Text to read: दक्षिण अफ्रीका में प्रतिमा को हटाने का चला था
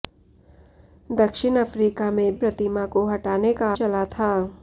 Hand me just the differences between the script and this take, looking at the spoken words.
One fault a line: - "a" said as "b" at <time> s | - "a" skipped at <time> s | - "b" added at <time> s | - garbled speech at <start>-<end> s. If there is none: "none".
none